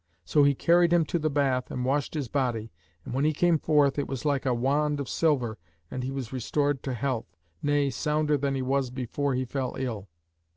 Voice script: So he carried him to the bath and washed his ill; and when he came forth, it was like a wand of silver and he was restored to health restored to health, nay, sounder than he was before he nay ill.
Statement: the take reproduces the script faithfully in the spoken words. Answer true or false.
false